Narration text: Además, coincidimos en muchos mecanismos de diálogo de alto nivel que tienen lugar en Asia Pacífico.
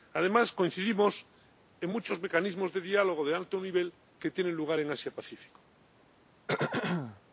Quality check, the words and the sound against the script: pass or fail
fail